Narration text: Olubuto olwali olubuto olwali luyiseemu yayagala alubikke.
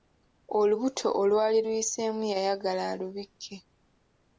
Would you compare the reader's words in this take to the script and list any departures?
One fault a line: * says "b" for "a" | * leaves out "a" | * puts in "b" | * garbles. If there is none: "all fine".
* leaves out "olubuto olwali"